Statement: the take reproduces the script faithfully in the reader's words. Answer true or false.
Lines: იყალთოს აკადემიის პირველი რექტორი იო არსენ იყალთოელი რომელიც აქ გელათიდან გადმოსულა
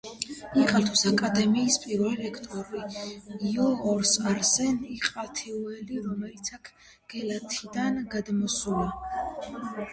true